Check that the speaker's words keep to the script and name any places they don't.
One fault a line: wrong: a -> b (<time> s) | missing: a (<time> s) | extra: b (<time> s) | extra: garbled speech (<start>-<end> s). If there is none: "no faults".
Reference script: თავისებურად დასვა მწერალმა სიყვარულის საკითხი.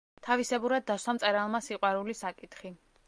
no faults